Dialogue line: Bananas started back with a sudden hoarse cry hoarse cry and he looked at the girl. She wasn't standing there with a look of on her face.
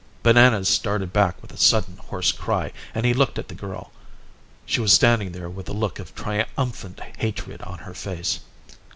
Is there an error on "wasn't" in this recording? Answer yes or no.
yes